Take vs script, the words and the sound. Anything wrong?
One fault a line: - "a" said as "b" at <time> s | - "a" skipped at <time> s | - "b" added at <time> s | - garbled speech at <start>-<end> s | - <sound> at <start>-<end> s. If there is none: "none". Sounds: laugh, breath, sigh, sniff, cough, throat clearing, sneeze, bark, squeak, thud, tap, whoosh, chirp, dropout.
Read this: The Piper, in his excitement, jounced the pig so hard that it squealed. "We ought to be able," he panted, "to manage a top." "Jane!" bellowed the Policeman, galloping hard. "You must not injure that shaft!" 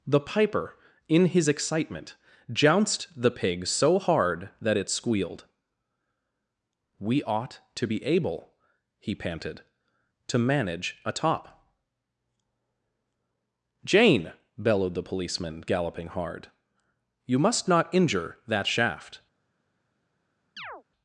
- chirp at 20.6-20.8 s